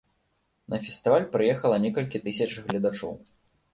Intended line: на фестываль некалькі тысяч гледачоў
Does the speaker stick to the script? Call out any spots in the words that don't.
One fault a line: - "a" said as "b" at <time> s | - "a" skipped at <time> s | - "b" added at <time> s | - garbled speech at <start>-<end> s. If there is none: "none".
- "прыехала" added at 1.4 s